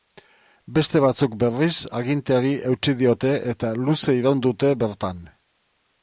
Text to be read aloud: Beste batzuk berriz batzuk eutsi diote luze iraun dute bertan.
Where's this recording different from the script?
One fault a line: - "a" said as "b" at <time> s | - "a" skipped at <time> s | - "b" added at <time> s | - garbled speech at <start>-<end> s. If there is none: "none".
- "batzuk" said as "aginteari" at 2.0 s
- "eta" added at 3.5 s